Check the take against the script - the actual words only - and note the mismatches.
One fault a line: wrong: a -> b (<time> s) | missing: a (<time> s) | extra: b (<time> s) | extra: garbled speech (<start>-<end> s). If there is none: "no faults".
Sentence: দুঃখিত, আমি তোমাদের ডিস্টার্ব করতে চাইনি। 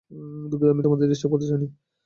no faults